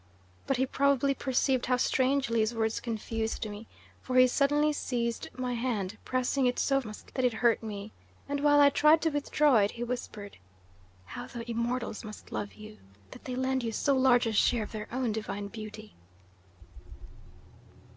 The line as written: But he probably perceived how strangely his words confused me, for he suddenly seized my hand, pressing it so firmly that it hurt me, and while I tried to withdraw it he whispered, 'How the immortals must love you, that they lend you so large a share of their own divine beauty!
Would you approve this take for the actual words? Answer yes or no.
no